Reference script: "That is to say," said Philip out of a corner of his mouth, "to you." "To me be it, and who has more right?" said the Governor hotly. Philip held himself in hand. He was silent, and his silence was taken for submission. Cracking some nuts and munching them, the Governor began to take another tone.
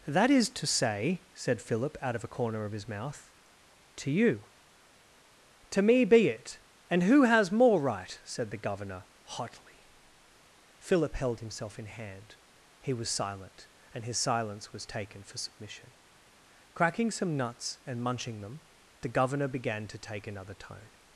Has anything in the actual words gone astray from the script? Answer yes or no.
no